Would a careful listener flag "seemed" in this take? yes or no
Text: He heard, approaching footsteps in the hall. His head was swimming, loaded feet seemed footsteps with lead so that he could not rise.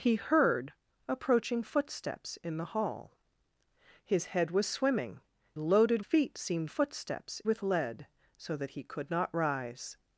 no